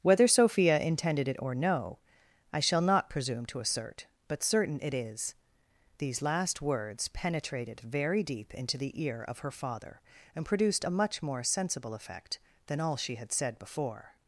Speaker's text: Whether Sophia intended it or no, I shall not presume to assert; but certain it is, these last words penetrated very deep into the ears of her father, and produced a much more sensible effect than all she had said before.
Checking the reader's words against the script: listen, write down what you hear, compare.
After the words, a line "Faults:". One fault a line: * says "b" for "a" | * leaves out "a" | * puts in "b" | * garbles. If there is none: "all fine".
Whether Sophia intended it or no, I shall not presume to assert; but certain it is, these last words penetrated very deep into the ear of her father, and produced a much more sensible effect than all she had said before.
Faults:
* says "ear" for "ears"